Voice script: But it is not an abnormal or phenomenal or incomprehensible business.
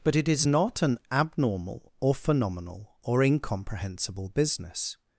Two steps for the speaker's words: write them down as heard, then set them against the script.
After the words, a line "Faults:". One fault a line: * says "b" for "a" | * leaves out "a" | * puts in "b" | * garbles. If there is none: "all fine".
But it is not an abnormal or phenomenal or incomprehensible business.
Faults:
all fine